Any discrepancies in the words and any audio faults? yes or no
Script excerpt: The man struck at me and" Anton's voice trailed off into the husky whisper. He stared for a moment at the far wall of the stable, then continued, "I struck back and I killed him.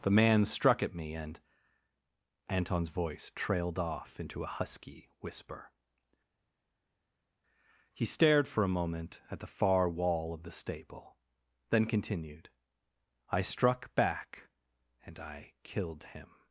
yes